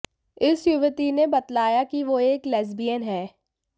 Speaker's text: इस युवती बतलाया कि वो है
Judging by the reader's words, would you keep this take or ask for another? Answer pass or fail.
fail